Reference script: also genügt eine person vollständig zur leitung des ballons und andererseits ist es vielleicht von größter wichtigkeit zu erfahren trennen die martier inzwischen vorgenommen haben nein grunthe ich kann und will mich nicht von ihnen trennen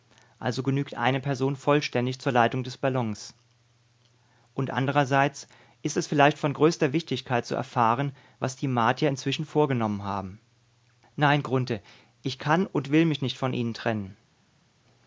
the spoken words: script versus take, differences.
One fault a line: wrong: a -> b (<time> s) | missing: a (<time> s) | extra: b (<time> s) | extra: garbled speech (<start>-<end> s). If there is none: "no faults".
wrong: trennen -> was (8.4 s)